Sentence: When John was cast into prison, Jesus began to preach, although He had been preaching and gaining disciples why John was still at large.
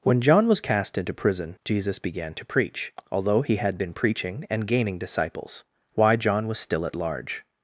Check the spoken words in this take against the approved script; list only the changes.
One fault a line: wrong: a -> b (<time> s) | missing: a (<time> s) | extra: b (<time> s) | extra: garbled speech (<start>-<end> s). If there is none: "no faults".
no faults